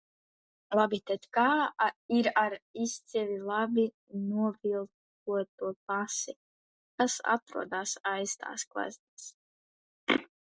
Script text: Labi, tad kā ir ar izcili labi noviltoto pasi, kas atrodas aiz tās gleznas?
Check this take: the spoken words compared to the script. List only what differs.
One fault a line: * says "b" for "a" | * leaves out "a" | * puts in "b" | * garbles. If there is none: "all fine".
all fine